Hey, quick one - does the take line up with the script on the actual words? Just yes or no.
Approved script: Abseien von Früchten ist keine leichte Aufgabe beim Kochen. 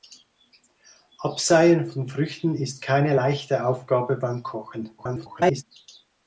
no